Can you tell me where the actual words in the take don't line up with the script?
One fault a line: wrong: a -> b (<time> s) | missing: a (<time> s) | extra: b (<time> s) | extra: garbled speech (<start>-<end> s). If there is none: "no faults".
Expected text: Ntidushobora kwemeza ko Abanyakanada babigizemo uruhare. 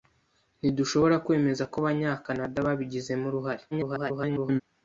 extra: garbled speech (3.7-4.6 s)